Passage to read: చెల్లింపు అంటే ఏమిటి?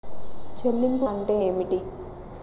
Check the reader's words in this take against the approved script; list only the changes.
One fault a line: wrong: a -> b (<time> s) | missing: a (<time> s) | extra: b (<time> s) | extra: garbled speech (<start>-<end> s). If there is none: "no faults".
no faults